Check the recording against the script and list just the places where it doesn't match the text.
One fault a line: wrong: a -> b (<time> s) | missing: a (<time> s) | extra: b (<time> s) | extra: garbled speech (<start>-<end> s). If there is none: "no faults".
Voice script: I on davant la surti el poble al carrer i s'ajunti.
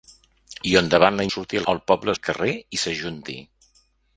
no faults